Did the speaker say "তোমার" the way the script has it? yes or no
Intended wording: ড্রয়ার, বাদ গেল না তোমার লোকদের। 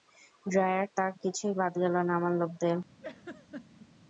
no